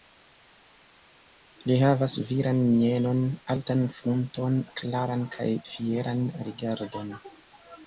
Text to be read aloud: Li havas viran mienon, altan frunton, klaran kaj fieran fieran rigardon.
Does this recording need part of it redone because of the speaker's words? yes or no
yes